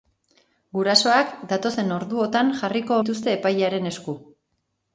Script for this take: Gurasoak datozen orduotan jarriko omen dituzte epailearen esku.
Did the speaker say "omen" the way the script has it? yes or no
no